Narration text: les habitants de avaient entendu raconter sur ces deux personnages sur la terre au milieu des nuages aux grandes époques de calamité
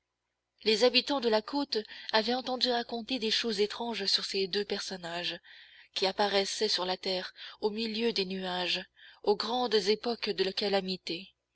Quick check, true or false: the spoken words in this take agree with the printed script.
false